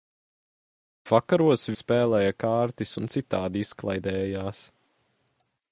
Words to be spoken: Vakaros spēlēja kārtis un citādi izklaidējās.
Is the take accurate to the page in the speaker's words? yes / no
yes